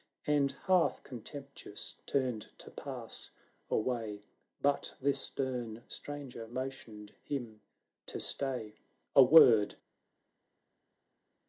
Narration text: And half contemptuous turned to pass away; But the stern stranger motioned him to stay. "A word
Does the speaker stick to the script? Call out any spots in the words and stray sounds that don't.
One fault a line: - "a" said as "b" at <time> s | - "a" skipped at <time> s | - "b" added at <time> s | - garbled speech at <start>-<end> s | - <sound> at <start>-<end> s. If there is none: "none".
none